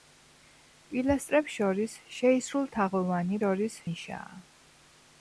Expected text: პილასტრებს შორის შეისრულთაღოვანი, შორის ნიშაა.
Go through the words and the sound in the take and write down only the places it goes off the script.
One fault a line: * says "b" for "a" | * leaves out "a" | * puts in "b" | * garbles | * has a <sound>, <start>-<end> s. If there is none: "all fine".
all fine